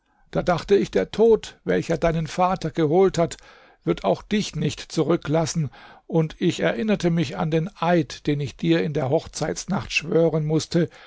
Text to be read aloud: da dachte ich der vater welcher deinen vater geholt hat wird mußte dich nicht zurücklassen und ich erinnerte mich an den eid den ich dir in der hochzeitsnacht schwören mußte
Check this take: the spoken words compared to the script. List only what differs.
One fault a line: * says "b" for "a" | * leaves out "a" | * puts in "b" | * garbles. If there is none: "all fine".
* says "tod" for "vater"
* says "auch" for "mußte"